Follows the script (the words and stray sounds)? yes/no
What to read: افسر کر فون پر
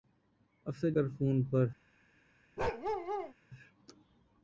no